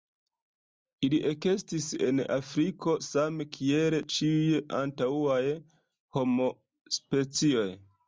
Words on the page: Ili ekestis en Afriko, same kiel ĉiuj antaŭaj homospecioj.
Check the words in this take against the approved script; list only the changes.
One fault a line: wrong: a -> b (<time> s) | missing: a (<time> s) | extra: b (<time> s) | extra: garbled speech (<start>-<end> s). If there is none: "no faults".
no faults